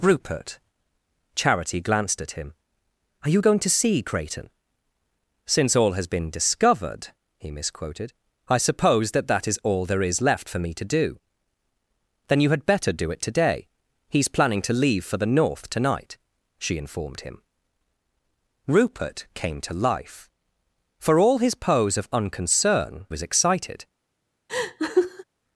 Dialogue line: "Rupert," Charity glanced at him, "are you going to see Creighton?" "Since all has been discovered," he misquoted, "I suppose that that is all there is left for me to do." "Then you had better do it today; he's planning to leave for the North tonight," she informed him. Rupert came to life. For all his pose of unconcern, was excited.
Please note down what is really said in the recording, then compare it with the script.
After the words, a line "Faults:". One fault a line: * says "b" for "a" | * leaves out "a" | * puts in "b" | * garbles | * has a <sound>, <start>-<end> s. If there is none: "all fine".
"Rupert," Charity glanced at him, "are you going to see Creighton?" "Since all has been discovered," he misquoted, "I suppose that that is all there is left for me to do." "Then you had better do it today; he's planning to leave for the North tonight," she informed him. Rupert came to life. For all his pose of unconcern, was excited.
Faults:
* has a laugh, 24.5-25.2 s